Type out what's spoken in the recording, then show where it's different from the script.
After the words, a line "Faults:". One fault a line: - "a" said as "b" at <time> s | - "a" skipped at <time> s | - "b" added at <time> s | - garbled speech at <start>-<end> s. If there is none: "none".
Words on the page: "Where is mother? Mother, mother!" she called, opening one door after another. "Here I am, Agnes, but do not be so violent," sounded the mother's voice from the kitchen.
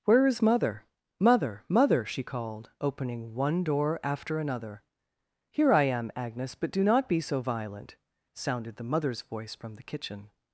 "Where is mother? Mother, mother!" she called, opening one door after another. "Here I am, Agnes, but do not be so violent," sounded the mother's voice from the kitchen.
Faults:
none